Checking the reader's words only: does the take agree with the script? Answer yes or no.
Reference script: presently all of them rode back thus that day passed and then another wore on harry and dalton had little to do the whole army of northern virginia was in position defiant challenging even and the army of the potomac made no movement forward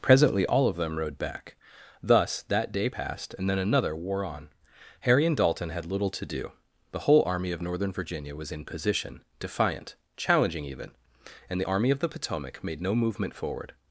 yes